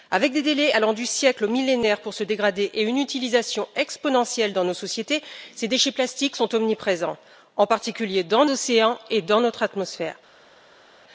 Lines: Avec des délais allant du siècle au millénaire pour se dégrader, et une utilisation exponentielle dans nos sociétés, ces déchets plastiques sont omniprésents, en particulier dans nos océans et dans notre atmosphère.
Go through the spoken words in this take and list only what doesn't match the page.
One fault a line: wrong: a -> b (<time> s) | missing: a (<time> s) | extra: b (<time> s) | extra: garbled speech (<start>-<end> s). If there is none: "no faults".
missing: nos (8.5 s)